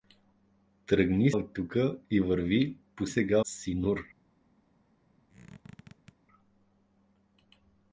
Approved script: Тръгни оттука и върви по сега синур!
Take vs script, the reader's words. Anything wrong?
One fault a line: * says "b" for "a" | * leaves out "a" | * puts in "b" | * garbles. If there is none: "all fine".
all fine